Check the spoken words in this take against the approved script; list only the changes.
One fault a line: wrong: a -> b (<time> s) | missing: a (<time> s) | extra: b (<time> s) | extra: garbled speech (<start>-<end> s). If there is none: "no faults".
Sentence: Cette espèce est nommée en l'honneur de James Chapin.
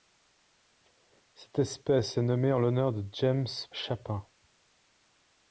no faults